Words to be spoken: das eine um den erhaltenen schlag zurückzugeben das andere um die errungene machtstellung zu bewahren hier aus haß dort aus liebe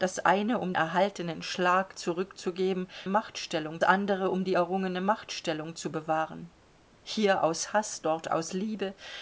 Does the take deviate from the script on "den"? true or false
true